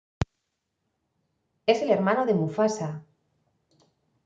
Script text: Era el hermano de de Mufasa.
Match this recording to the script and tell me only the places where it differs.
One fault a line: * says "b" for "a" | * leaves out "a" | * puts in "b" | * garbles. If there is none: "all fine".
* says "Es" for "Era"
* leaves out "de"